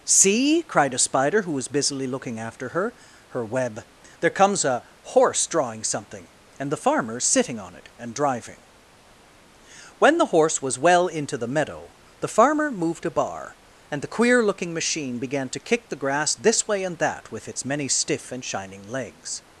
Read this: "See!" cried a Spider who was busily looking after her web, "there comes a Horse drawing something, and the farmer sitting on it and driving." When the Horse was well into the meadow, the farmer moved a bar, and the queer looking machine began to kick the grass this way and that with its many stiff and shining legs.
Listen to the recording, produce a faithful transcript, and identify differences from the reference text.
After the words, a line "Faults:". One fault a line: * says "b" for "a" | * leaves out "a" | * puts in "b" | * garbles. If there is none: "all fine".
"See!" cried a Spider who was busily looking after her her web, "there comes a Horse drawing something, and the farmer sitting on it and driving." When the Horse was well into the meadow, the farmer moved a bar, and the queer looking machine began to kick the grass this way and that with its many stiff and shining legs.
Faults:
* puts in "her"